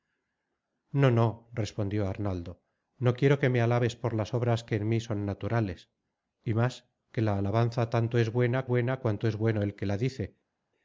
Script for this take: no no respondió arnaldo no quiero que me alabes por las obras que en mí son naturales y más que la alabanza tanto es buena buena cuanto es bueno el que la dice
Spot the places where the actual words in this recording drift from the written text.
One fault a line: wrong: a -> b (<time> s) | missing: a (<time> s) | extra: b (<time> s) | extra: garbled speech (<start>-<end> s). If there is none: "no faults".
no faults